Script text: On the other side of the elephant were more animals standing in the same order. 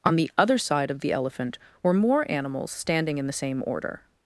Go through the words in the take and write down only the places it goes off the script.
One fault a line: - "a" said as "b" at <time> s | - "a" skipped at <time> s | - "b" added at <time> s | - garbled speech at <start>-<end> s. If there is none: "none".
none